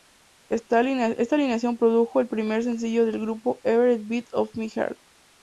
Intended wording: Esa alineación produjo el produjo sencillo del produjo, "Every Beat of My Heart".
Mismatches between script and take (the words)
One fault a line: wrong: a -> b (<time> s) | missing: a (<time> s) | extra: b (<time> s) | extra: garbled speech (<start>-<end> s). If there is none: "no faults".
wrong: Esa -> Esta (0.5 s)
wrong: produjo -> primer (2.3 s)
wrong: produjo -> grupo (3.2 s)